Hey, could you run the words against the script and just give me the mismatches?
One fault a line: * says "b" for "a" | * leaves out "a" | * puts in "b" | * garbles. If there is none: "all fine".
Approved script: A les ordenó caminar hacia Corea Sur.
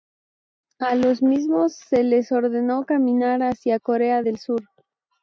* puts in "los mismos se"
* puts in "del"